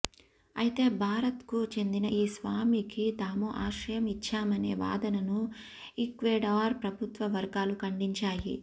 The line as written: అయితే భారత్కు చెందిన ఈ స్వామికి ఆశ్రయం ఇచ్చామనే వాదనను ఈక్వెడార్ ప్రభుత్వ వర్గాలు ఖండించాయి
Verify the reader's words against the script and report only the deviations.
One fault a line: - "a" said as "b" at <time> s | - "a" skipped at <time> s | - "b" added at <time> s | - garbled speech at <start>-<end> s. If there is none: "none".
- "తాము" added at 3.2 s